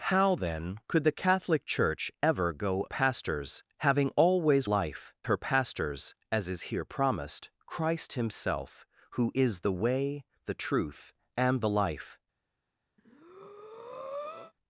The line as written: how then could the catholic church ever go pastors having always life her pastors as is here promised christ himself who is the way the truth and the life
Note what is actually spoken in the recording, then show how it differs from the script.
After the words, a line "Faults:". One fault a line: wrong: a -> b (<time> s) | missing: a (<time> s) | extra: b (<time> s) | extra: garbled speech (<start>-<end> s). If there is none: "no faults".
how then could the catholic church ever go pastors having always life her pastors as is here promised christ himself who is the way the truth and the life
Faults:
no faults